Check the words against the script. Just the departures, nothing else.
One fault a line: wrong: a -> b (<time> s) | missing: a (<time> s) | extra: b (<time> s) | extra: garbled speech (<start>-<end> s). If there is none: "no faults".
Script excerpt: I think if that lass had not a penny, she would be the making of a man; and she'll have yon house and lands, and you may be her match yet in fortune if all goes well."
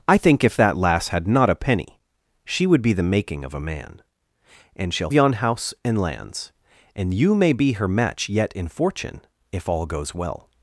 missing: have (5.1 s)